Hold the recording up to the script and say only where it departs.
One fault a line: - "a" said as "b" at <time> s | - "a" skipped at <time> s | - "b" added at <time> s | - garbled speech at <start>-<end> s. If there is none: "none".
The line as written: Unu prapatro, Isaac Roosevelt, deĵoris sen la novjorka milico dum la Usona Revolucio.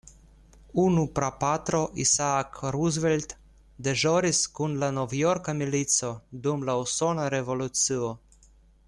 - "sen" said as "kun" at 4.6 s